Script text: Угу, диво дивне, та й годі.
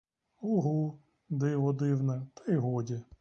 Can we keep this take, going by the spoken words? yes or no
yes